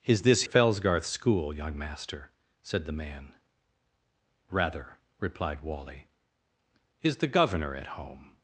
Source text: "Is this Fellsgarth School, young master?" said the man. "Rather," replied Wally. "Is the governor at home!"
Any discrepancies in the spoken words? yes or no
no